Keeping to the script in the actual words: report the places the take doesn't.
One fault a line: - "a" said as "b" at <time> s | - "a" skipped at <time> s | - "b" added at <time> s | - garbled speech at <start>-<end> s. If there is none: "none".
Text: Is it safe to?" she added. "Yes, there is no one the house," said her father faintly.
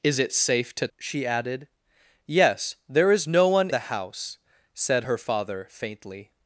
none